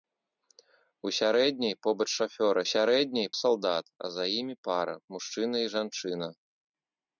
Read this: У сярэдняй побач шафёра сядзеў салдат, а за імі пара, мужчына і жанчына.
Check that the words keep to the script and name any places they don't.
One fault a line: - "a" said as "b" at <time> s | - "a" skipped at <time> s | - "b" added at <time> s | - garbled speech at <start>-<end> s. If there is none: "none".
- "сядзеў" said as "сярэдняй" at 2.7 s